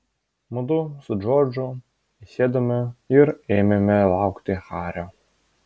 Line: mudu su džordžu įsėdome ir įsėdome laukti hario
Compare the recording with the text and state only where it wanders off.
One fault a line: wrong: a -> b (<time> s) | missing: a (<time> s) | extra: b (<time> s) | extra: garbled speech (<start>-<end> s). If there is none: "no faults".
wrong: įsėdome -> ėmėme (3.6 s)